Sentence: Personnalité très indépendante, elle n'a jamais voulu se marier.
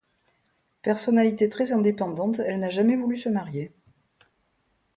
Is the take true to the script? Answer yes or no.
yes